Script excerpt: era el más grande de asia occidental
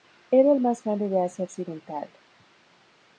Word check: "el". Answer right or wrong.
right